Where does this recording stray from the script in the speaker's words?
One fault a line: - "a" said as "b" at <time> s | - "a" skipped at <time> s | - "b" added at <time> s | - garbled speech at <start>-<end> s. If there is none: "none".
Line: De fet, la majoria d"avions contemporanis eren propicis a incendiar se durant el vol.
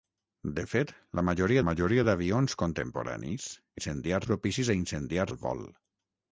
- "majoria" added at 1.7 s
- "eren" said as "incendiar" at 3.8 s
- "se durant" skipped at 5.3 s